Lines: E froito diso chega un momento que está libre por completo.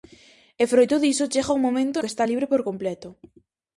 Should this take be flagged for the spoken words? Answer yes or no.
no